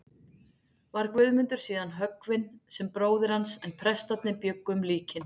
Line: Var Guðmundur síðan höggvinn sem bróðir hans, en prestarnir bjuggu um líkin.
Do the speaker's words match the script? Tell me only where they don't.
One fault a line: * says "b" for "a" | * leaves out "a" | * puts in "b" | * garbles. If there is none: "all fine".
all fine